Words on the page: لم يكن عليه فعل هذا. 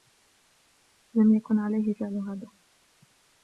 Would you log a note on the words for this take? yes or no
no